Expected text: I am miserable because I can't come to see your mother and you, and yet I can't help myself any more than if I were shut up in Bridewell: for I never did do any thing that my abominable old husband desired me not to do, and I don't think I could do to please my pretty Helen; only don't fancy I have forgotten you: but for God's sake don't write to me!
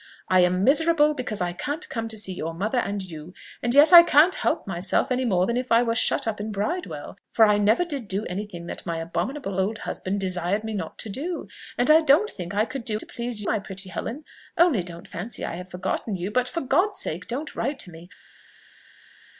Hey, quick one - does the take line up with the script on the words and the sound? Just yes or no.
yes